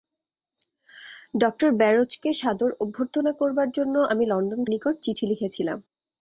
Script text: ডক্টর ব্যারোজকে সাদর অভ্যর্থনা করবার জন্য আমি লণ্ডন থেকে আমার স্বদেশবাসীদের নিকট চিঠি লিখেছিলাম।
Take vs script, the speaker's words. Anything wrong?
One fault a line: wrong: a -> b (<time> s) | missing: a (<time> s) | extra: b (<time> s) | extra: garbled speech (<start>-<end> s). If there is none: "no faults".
missing: থেকে আমার স্বদেশবাসীদের (4.6 s)